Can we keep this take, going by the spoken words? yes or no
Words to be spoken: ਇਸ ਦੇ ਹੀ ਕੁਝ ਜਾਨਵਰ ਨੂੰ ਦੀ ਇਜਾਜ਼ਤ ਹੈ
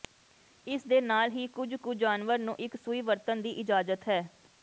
no